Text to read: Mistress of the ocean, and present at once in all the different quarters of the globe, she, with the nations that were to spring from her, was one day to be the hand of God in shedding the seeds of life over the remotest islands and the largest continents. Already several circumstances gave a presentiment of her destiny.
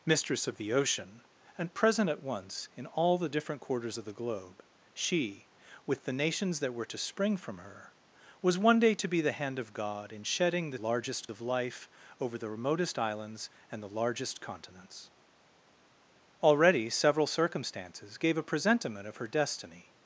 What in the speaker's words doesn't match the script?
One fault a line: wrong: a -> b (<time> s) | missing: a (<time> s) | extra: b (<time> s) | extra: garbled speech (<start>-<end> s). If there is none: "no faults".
wrong: seeds -> largest (10.8 s)